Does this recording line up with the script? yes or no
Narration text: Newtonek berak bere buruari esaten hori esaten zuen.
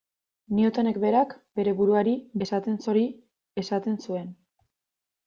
yes